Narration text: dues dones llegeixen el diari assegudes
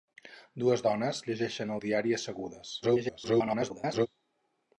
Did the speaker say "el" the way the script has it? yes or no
yes